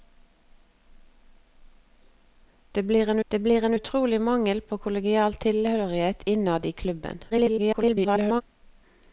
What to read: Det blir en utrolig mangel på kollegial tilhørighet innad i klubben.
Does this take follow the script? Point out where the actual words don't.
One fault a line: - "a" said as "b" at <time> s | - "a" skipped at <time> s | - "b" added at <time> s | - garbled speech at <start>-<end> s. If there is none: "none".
- "det blir en" added at 3.3 s
- garbled speech at 7.3-8.4 s